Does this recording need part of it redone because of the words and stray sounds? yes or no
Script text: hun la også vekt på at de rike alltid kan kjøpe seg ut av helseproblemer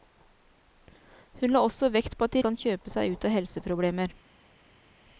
yes